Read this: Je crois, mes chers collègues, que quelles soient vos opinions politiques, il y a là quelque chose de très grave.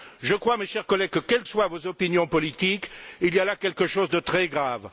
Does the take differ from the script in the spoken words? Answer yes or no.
no